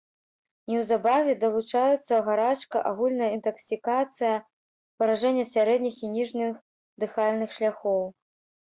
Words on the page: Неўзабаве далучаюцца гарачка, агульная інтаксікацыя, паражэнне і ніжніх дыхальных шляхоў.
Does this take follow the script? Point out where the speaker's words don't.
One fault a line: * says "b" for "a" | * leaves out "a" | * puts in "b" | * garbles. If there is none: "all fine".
* puts in "сярэдніх"